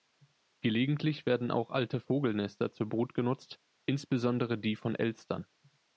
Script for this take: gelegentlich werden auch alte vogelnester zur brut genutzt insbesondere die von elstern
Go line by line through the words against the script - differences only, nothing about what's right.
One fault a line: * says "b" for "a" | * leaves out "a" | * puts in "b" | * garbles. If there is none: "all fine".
all fine